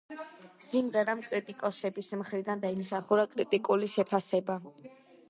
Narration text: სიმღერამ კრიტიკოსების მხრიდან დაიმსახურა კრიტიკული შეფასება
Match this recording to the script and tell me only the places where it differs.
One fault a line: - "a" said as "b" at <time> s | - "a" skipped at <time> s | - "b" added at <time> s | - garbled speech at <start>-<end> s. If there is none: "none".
none